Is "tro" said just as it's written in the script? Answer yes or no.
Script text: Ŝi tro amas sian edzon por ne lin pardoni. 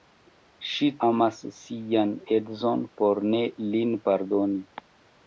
no